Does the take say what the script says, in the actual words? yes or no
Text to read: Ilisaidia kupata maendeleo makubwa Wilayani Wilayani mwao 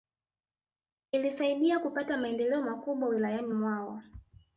no